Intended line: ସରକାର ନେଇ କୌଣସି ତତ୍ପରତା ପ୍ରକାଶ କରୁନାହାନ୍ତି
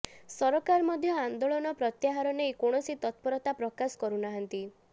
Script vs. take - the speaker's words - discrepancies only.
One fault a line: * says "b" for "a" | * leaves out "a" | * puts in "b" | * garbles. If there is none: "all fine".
* puts in "ମଧ୍ୟ ଆନ୍ଦୋଳନ ପ୍ରତ୍ୟାହାର"